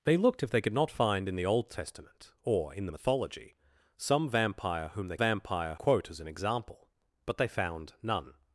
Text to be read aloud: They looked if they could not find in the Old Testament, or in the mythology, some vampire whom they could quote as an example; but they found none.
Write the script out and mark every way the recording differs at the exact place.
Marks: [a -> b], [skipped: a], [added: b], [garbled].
They looked if they could not find in the Old Testament, or in the mythology, some vampire whom they [could -> vampire] quote as an example; but they found none.